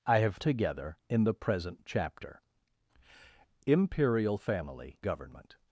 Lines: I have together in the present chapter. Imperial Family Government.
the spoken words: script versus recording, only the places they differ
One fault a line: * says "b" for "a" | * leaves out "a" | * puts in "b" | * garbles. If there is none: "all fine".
all fine